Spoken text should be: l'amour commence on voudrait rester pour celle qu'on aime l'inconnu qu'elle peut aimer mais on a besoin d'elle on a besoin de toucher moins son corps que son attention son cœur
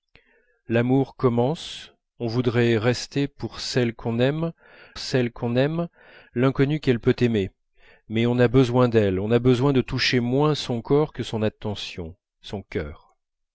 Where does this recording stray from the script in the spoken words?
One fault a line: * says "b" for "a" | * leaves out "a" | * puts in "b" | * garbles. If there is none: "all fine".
* puts in "celle qu'on aime"